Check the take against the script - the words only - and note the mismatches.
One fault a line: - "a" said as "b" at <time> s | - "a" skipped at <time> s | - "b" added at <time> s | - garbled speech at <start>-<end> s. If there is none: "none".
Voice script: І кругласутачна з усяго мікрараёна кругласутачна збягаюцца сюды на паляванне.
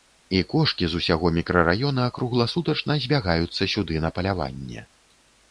- "кругласутачна" said as "кошкі" at 0.5 s